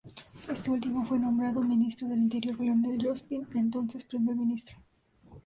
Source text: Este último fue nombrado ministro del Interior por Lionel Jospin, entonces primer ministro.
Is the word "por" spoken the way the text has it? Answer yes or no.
no